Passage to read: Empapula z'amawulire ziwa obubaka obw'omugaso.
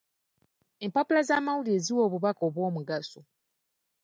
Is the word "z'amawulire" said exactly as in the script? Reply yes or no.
yes